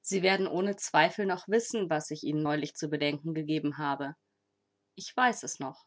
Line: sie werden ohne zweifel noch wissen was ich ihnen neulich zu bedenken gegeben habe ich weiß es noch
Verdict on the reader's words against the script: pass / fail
pass